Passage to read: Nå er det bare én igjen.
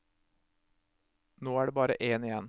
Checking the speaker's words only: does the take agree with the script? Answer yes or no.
yes